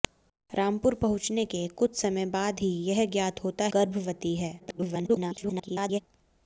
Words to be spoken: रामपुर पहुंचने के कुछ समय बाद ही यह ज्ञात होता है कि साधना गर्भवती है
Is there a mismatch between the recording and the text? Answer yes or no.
yes